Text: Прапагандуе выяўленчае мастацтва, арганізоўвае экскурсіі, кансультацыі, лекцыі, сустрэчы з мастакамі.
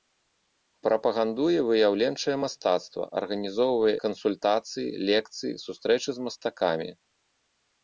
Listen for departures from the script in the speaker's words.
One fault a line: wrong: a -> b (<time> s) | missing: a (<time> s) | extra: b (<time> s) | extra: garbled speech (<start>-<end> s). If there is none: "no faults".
missing: экскурсіі (3.9 s)